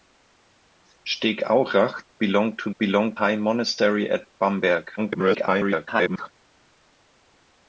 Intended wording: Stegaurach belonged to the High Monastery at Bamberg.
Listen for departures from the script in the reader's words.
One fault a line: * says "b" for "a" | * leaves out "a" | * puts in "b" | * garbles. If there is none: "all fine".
* says "belonged" for "the"
* garbles